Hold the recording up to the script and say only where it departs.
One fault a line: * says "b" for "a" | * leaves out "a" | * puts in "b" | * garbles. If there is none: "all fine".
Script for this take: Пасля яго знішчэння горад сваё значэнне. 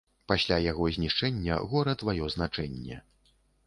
all fine